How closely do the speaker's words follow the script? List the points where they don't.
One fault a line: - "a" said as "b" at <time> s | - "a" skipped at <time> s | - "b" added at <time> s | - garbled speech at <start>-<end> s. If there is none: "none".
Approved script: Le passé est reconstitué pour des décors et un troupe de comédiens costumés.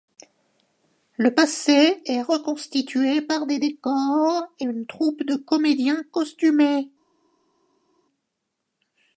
- "pour" said as "par" at 3.2 s
- "un" said as "une" at 4.6 s